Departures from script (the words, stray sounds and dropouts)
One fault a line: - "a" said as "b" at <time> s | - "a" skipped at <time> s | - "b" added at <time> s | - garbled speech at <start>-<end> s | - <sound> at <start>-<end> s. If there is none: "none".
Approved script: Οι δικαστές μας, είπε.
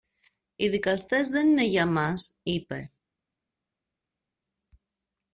- "δεν είναι για" added at 1.3 s